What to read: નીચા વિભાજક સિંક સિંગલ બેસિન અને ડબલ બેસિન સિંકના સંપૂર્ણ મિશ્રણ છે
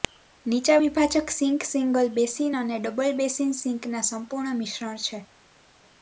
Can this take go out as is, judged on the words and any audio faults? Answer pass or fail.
pass